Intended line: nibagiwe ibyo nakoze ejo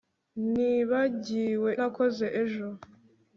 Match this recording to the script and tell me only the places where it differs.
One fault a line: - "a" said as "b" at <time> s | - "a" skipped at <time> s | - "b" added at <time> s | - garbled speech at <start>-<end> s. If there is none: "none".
- "ibyo" skipped at 1.7 s